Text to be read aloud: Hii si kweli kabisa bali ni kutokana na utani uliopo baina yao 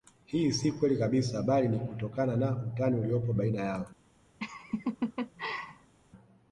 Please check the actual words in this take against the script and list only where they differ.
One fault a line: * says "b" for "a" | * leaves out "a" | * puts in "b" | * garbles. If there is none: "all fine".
all fine